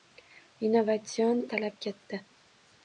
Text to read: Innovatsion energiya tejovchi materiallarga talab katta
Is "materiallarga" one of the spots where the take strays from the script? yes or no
yes